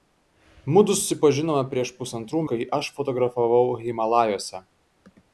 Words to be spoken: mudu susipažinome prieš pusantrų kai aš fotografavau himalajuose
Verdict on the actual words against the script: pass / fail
pass